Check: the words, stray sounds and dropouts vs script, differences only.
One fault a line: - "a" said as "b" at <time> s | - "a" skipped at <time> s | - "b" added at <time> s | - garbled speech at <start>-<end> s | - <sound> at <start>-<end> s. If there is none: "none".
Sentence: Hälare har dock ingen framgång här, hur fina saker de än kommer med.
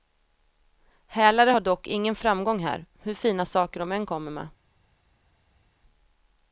none